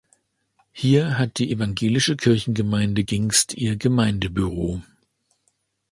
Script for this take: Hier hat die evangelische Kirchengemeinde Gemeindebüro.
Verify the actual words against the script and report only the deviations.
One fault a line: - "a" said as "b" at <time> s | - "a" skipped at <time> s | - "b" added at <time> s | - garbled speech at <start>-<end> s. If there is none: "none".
- "Gingst ihr" added at 3.0 s